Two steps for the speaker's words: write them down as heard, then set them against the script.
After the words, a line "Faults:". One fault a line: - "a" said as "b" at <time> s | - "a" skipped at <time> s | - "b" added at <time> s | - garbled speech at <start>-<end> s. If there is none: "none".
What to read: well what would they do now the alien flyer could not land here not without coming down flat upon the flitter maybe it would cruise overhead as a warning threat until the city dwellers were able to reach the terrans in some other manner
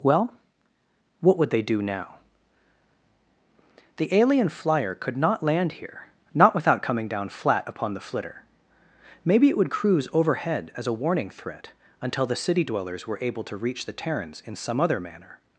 well what would they do now the alien flyer could not land here not without coming down flat upon the flitter maybe it would cruise overhead as a warning threat until the city dwellers were able to reach the terrans in some other manner
Faults:
none